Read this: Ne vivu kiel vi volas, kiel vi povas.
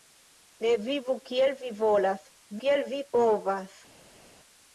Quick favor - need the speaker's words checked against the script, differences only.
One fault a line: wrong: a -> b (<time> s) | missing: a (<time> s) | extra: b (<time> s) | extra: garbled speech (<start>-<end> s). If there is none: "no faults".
no faults